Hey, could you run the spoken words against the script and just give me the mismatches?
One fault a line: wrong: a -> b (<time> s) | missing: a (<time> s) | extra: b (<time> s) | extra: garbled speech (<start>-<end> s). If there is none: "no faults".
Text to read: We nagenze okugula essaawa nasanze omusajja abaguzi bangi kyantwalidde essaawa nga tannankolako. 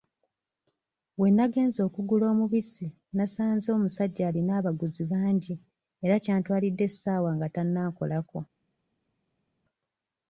wrong: essaawa -> omubisi (2.3 s)
extra: alina (4.3 s)
extra: era (6.0 s)